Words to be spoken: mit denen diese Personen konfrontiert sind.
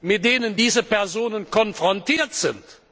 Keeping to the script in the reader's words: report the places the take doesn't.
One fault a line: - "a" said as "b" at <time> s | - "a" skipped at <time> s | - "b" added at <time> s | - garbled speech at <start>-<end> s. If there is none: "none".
none